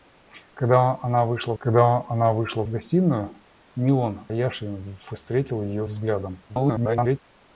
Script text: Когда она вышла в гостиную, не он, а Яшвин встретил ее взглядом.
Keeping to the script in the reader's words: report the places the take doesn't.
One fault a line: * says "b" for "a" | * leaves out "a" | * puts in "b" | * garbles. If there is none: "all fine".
* puts in "когда она вышла"
* leaves out "а"
* garbles